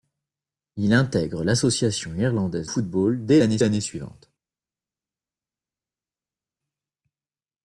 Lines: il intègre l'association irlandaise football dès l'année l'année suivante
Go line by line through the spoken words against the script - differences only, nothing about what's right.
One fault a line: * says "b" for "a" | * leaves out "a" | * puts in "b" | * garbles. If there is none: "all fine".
all fine